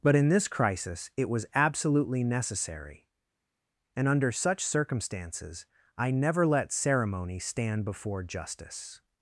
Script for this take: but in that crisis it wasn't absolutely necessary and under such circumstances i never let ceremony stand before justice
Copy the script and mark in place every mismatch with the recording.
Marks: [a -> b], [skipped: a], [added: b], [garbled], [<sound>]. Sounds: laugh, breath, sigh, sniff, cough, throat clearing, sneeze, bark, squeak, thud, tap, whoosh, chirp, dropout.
but in [that -> this] crisis it [wasn't -> was] absolutely necessary and under such circumstances i never let ceremony stand before justice